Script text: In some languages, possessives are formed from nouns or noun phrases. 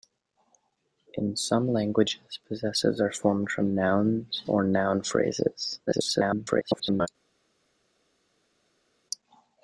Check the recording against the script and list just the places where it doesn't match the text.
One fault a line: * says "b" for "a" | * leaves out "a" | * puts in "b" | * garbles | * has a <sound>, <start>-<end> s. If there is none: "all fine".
* garbles